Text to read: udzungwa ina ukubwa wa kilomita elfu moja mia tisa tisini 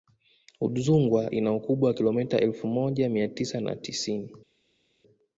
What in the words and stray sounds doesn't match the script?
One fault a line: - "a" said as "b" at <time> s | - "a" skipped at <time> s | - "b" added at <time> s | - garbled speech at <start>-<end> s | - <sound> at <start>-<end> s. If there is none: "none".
- "na" added at 3.6 s